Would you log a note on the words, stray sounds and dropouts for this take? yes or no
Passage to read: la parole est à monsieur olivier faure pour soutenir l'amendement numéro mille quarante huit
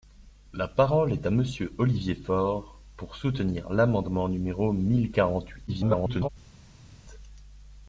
yes